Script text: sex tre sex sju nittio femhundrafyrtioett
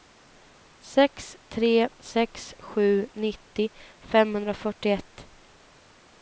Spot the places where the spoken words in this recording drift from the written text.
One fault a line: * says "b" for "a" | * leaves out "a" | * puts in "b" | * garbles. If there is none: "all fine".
all fine